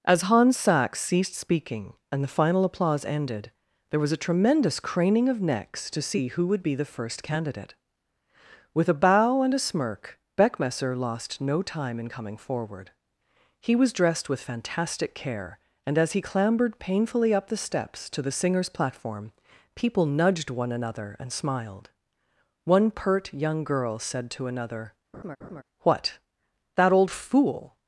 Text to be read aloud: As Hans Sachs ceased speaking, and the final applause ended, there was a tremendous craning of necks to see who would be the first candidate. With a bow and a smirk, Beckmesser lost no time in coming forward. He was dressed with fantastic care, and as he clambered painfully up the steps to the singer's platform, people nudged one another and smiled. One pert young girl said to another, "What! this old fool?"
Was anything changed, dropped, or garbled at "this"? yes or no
yes